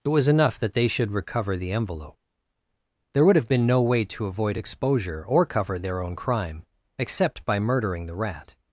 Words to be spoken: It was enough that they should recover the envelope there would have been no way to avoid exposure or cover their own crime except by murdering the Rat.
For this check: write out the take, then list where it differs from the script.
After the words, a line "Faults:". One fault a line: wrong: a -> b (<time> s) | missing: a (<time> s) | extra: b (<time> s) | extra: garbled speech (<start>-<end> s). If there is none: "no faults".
It was enough that they should recover the envelope there would have been no way to avoid exposure or cover their own crime except by murdering the Rat.
Faults:
no faults